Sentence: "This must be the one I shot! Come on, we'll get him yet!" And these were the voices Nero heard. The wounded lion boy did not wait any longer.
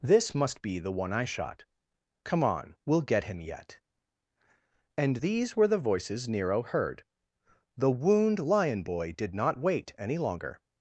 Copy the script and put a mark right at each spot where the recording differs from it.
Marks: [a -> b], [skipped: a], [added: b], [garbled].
"This must be the one I shot! Come on, we'll get him yet!" And these were the voices Nero heard. The [wounded -> wound] lion boy did not wait any longer.